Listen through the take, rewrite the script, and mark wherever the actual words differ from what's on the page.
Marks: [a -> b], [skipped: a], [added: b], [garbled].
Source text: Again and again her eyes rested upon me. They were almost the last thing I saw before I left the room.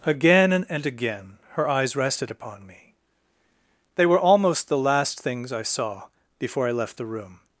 Again and again her eyes rested upon me. They were almost the last [thing -> things] I saw before I left the room.